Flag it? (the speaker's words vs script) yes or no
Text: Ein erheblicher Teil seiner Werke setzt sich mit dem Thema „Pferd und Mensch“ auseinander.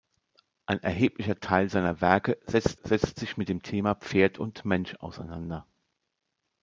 yes